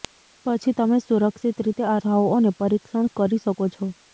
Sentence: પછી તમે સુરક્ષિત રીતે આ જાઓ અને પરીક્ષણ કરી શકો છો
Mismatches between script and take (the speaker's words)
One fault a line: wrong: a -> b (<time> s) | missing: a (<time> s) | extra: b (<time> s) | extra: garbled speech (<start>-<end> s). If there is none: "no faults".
no faults